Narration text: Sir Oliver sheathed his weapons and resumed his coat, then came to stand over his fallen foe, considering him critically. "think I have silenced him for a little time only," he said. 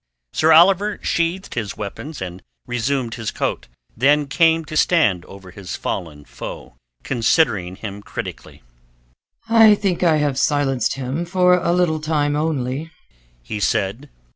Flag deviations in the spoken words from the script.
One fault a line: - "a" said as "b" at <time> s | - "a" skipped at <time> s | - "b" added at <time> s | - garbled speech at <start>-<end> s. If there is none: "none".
- "I" added at 9.5 s